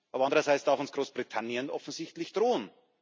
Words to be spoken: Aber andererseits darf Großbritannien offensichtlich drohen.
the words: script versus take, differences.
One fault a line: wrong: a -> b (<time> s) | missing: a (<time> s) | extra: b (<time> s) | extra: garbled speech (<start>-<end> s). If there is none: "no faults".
extra: uns (0.8 s)